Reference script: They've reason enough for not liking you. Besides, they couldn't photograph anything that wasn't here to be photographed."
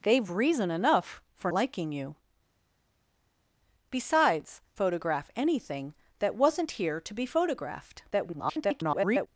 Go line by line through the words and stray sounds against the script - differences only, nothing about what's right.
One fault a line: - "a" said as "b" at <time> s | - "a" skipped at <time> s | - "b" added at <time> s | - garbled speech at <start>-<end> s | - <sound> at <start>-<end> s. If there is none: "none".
- "not" skipped at 1.5 s
- "they couldn't" skipped at 4.6 s
- garbled speech at 8.1-9.3 s